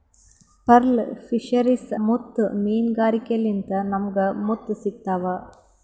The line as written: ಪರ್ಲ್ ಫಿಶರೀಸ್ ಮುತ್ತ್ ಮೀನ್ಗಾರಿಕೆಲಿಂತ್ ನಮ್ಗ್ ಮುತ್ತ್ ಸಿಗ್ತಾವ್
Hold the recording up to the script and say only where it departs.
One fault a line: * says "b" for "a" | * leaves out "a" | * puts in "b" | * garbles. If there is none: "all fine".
all fine